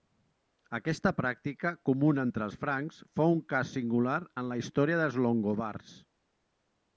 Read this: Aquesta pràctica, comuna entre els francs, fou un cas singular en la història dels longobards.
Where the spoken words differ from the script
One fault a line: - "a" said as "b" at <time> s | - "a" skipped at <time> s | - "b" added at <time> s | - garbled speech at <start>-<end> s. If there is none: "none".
none